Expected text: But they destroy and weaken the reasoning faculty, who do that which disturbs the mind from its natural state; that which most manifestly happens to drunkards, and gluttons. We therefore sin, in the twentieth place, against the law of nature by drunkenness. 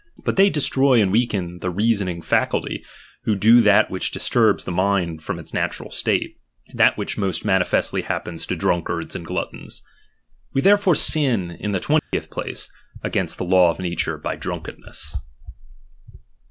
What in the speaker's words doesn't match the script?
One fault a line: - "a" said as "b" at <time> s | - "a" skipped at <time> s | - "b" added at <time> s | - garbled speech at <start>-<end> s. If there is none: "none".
none